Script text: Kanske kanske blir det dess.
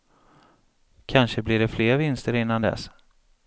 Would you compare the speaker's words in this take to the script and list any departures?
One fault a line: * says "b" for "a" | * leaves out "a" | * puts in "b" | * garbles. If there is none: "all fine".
* leaves out "kanske"
* puts in "fler vinster innan"